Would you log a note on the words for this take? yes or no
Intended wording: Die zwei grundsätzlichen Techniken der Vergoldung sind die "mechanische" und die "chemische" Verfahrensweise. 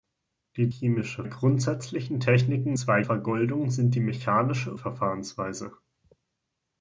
yes